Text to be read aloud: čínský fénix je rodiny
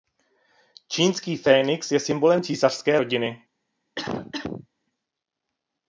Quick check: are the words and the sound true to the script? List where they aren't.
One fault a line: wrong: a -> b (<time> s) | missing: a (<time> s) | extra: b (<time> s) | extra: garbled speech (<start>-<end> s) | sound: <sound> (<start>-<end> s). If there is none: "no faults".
extra: symbolem císařské (2.0 s)
sound: cough (4.0-4.7 s)